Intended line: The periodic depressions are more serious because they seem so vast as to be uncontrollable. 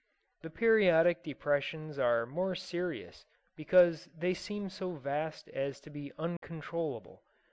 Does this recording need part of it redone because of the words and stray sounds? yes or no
yes